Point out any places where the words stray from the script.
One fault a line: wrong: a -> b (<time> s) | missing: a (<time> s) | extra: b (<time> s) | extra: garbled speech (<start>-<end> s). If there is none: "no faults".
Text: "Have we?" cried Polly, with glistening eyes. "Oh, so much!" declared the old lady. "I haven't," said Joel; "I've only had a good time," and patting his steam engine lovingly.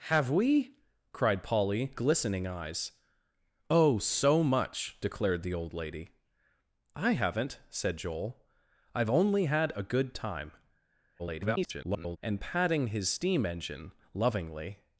missing: with (1.9 s)
extra: garbled speech (11.2-12.2 s)